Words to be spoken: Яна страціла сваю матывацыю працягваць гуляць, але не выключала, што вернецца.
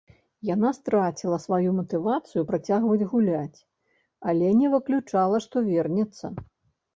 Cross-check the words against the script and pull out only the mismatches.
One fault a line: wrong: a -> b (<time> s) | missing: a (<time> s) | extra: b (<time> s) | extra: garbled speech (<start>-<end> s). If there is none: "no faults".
no faults